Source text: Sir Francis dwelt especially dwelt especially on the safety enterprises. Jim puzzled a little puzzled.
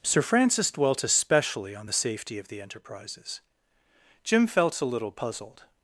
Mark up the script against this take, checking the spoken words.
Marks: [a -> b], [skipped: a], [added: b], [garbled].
Sir Francis dwelt especially [skipped: dwelt especially] on the safety [added: of the] enterprises. Jim [puzzled -> felt] a little puzzled.